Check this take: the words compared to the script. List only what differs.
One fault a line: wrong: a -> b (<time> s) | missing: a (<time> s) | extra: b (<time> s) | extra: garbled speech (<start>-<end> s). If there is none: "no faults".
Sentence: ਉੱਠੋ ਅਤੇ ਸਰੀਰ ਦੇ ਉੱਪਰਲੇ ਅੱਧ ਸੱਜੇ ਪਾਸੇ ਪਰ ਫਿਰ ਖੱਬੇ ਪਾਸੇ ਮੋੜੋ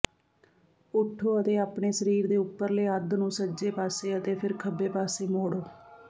extra: ਆਪਣੇ (1.6 s)
extra: ਨੂੰ (3.1 s)
wrong: ਪਰ -> ਅਤੇ (4.2 s)